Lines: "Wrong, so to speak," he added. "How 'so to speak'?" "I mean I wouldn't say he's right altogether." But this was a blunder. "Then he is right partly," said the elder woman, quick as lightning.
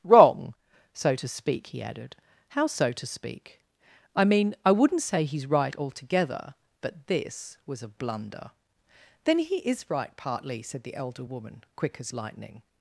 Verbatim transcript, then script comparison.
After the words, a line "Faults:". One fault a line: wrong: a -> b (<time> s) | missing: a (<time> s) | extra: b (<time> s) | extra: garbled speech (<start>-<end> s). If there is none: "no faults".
"Wrong, so to speak," he added. "How 'so to speak'?" "I mean I wouldn't say he's right altogether." But this was a blunder. "Then he is right partly," said the elder woman, quick as lightning.
Faults:
no faults